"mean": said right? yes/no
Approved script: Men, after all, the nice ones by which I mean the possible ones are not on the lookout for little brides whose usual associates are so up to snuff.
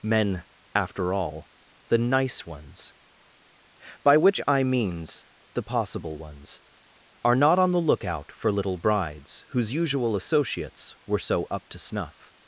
no